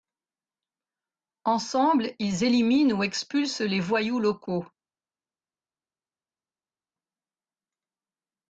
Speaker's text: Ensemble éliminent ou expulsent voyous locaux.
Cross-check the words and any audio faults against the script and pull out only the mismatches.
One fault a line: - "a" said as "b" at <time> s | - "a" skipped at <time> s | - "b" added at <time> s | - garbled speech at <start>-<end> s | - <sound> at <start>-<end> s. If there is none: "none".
- "ils" added at 2.2 s
- "les" added at 3.6 s